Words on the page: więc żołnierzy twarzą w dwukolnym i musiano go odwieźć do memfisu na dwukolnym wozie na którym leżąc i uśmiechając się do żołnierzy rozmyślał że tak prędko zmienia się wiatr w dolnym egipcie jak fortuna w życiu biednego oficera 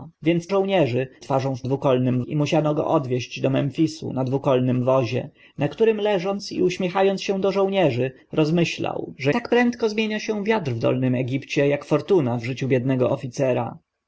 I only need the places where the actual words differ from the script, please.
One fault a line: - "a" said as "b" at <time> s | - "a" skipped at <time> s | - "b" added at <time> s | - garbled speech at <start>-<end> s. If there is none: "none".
none